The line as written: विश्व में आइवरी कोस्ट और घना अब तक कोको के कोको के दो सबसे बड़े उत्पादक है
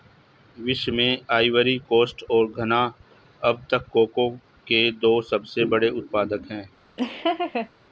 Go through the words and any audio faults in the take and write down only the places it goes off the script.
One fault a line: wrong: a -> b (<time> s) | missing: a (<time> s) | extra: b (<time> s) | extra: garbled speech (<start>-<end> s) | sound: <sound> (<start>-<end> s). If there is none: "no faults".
missing: कोको के (4.9 s)
sound: laugh (7.0-7.7 s)